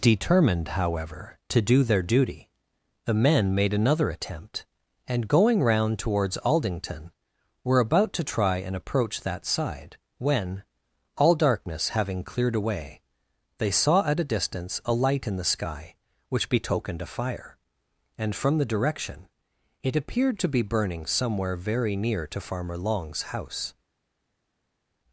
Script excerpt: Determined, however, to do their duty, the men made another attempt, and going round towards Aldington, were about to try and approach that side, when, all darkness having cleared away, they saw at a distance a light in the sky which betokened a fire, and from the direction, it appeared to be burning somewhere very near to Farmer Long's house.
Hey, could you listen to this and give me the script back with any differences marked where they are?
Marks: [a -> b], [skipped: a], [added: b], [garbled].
Determined, however, to do their duty, the men made another attempt, and going round towards Aldington, were about to try and approach that side, when, all darkness having cleared away, they saw at a distance a light in the sky which betokened a fire, and from the direction, it appeared to be burning somewhere very near to Farmer Long's house.